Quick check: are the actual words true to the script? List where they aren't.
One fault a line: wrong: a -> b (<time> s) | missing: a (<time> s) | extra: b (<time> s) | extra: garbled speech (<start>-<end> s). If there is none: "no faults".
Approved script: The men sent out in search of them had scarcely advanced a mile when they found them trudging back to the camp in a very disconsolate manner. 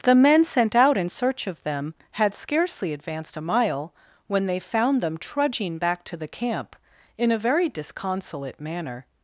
no faults